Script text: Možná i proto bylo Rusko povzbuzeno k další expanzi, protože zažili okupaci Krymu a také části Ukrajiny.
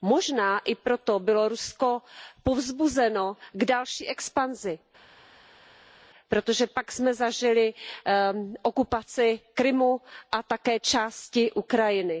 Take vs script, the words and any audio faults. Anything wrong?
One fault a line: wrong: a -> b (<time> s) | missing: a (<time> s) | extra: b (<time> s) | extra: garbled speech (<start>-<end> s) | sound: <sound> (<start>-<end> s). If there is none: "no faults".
extra: pak jsme (6.7 s)